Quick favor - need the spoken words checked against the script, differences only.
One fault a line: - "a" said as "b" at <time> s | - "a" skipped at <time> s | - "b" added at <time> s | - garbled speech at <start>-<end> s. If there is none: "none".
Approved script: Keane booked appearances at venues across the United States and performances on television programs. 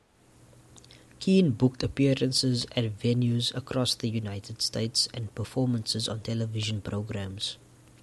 none